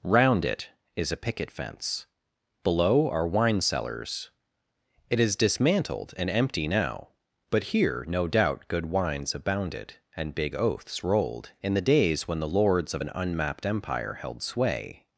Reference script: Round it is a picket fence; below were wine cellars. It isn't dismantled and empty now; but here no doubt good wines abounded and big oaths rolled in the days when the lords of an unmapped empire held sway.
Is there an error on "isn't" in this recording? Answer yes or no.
yes